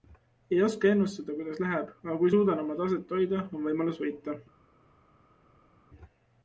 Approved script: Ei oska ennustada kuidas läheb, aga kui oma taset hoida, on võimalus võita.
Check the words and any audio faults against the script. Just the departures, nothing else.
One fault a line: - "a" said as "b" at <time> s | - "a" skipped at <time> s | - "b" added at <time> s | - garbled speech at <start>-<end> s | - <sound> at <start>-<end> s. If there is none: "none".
- "suudan" added at 2.4 s